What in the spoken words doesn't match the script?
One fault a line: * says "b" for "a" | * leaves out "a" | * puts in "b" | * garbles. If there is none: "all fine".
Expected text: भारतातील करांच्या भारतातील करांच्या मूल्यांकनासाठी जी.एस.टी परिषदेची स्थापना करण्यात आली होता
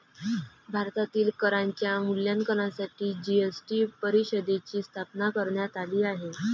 * leaves out "भारतातील करांच्या"
* says "आहे" for "होता"